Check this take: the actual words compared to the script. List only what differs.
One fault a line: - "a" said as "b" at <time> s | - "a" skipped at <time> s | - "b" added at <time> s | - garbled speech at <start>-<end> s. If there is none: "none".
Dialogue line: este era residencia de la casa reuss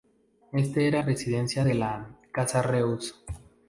none